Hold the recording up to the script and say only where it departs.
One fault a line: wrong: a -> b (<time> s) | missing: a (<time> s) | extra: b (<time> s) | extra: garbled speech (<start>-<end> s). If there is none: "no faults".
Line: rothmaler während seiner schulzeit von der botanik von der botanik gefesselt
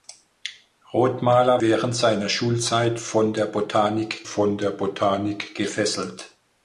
no faults